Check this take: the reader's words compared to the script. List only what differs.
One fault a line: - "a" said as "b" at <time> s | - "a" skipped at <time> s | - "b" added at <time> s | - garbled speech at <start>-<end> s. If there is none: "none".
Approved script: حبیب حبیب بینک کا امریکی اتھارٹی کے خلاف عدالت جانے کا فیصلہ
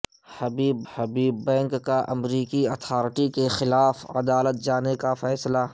none